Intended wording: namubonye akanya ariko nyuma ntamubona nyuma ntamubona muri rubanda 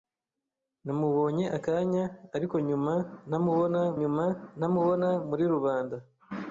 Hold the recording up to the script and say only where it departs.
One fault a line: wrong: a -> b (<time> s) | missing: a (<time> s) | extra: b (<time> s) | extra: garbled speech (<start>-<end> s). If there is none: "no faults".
no faults